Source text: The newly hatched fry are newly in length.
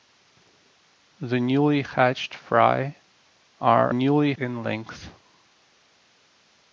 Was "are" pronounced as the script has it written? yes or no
yes